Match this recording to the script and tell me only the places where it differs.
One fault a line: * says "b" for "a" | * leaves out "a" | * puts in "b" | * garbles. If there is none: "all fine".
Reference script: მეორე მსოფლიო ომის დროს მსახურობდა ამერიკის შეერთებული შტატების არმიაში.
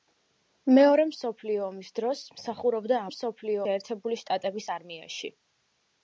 * says "მსოფლიო" for "ამერიკის"